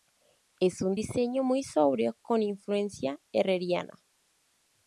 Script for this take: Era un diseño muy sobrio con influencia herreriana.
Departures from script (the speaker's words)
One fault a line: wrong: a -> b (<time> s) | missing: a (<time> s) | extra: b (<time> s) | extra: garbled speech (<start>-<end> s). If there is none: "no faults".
wrong: Era -> Es (0.6 s)